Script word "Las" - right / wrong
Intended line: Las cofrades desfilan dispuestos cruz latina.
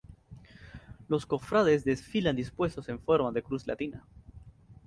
wrong